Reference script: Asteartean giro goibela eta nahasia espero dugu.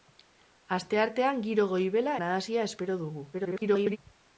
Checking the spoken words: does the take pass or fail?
fail